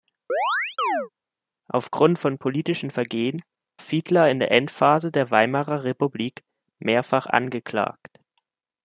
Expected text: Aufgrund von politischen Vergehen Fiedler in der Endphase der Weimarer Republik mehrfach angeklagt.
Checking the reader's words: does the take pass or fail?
pass